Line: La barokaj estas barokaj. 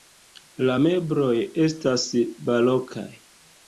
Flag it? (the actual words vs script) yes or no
yes